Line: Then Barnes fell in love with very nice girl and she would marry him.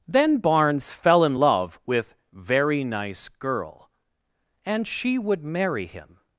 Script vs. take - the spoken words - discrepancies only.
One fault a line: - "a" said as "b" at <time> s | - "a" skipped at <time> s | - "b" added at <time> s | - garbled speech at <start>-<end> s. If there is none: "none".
none